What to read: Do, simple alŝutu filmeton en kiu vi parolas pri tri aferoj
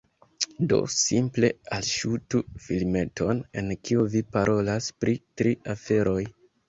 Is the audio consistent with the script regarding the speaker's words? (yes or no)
yes